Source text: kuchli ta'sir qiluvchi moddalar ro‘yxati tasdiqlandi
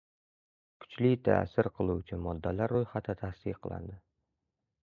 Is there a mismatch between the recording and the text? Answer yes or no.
no